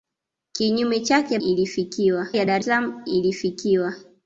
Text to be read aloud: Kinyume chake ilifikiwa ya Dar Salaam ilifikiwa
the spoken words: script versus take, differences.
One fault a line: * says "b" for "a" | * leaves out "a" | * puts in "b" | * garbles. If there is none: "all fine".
all fine